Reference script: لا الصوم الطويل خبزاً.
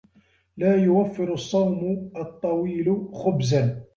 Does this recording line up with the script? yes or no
no